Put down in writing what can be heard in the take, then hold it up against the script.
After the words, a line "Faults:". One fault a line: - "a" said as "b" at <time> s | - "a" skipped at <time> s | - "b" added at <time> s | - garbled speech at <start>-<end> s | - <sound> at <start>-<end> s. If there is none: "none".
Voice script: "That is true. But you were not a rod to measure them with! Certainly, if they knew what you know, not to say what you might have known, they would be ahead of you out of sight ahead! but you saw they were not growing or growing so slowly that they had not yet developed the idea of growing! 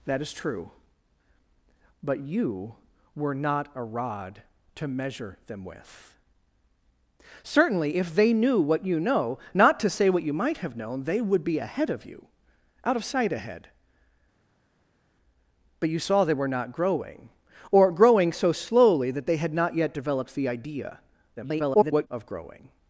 "That is true. But you were not a rod to measure them with! Certainly, if they knew what you know, not to say what you might have known, they would be ahead of you out of sight ahead! but you saw they were not growing or growing so slowly that they had not yet developed the idea [garbled] of growing!
Faults:
- garbled speech at 21.4-22.1 s